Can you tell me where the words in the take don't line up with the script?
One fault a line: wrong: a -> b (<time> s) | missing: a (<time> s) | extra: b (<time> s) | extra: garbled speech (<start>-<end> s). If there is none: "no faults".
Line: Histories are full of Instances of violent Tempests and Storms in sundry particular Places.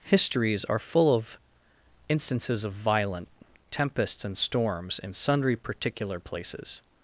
no faults